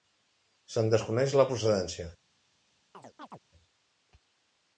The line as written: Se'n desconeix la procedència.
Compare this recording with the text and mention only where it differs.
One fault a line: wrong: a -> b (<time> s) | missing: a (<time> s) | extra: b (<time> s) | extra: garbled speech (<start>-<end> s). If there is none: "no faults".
no faults